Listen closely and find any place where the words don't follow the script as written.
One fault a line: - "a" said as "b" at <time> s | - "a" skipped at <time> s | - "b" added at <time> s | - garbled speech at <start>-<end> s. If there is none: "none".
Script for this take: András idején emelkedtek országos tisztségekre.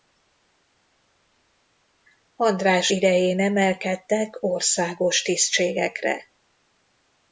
none